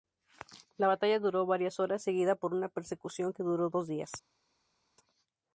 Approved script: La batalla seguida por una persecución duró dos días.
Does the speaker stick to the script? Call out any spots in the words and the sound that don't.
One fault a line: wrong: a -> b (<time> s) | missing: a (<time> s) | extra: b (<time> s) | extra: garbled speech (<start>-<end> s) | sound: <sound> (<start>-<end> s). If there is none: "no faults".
extra: duró varias horas (1.2 s)
extra: que (3.3 s)